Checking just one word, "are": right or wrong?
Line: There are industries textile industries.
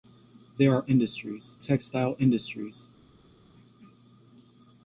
right